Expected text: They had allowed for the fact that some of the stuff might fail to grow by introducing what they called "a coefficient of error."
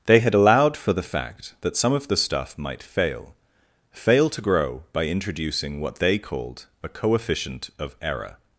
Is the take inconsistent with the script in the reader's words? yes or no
yes